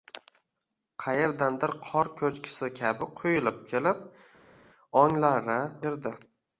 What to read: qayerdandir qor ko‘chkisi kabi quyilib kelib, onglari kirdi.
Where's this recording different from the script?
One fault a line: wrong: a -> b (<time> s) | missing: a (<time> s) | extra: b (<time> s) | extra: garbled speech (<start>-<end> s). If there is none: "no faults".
no faults